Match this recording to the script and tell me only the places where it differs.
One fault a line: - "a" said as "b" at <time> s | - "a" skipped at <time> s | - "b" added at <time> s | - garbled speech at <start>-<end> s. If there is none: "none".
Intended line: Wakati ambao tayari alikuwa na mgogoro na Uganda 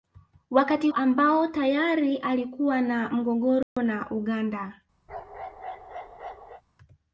none